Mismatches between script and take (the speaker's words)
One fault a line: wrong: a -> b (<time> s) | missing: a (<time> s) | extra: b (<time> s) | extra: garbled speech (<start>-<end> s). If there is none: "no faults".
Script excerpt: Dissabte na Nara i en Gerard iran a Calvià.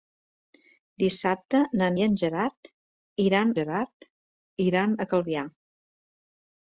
missing: Nara (1.9 s)
extra: Gerard iran (3.6 s)